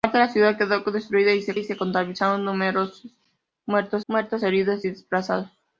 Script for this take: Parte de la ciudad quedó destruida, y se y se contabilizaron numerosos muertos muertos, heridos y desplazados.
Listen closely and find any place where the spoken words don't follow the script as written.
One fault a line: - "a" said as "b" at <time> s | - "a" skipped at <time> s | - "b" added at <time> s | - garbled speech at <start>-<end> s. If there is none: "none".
none